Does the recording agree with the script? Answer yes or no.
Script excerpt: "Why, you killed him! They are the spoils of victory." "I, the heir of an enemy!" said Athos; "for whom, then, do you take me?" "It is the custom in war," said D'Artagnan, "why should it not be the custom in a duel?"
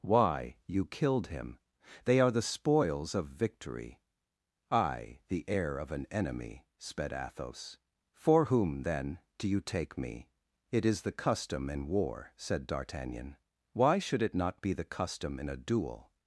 no